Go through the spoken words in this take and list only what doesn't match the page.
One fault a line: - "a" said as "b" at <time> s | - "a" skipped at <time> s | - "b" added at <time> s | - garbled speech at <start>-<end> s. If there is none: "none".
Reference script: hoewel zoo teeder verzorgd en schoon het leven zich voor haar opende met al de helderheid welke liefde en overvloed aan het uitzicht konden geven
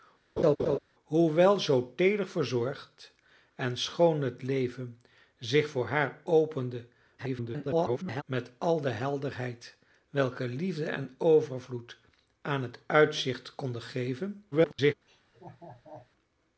- garbled speech at 7.2-8.2 s
- garbled speech at 14.5-14.9 s